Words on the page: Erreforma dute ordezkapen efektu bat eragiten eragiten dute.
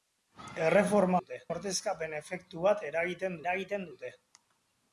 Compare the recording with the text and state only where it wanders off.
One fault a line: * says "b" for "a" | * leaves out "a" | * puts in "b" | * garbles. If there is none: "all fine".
all fine